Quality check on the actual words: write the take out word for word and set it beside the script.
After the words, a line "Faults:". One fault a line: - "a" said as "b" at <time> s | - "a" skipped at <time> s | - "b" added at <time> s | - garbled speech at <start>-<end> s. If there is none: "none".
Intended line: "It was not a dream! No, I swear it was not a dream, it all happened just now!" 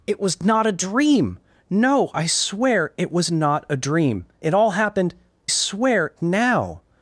"It was not a dream! No, I swear it was not a dream, it all happened swear now!"
Faults:
- "just" said as "swear" at 5.5 s